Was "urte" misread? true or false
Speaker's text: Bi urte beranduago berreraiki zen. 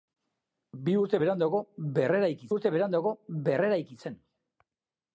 false